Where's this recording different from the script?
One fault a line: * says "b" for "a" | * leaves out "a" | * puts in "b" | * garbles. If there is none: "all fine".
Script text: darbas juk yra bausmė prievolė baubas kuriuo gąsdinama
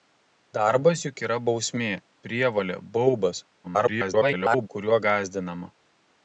* garbles